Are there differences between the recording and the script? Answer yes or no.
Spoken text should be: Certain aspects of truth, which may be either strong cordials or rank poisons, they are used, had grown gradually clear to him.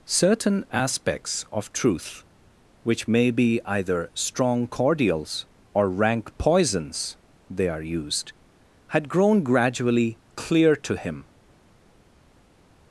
no